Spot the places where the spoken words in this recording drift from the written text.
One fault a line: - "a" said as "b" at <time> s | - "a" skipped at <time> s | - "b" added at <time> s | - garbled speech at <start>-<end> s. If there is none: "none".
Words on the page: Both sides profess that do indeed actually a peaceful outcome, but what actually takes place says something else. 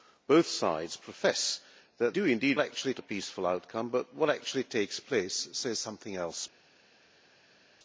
none